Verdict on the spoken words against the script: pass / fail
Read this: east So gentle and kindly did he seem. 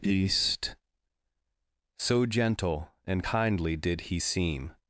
pass